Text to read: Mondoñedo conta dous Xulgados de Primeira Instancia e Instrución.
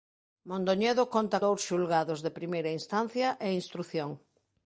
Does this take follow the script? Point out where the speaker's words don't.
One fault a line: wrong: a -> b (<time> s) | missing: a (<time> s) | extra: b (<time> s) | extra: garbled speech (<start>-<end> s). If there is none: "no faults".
no faults